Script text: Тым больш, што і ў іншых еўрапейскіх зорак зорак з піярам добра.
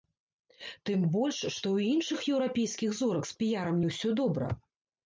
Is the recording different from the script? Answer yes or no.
yes